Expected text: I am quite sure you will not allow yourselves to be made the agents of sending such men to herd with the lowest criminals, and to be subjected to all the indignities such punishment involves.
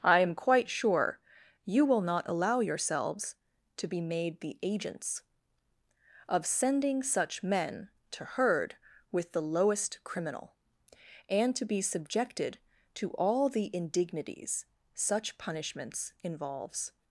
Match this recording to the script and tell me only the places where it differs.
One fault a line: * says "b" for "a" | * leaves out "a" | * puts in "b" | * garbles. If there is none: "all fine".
* says "criminal" for "criminals"
* says "punishments" for "punishment"